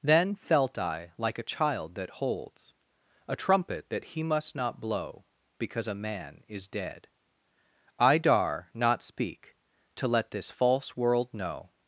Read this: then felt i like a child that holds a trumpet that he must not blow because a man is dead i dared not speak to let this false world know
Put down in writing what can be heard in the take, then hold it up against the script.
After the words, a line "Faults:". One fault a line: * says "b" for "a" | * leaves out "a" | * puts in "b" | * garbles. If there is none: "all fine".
then felt i like a child that holds a trumpet that he must not blow because a man is dead i dar not speak to let this false world know
Faults:
* says "dar" for "dared"